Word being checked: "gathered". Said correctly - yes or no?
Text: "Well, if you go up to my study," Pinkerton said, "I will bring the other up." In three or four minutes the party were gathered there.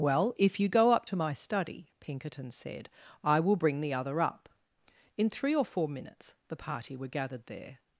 yes